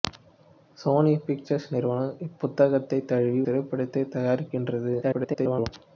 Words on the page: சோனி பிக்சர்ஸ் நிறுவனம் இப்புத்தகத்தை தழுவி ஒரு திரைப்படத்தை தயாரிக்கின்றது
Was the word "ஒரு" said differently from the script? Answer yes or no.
yes